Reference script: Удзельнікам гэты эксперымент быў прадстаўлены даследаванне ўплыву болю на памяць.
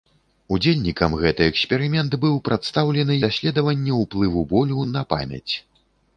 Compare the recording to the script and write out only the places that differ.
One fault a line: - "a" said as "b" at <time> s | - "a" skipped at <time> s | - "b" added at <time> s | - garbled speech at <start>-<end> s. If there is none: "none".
none